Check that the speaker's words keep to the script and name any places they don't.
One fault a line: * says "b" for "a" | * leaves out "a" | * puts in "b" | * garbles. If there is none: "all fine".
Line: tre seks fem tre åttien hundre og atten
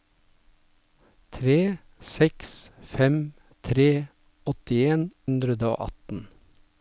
all fine